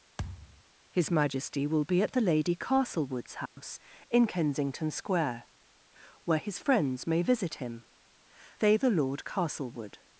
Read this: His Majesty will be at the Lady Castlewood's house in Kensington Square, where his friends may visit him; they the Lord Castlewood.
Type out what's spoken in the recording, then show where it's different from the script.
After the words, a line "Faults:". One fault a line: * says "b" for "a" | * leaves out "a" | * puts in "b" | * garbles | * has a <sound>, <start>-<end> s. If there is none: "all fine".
His Majesty will be at the Lady Castlewood's house in Kensington Square, where his friends may visit him; they the Lord Castlewood.
Faults:
* has a thud, 0.2-0.6 s
* has a dropout, 3.5-3.6 s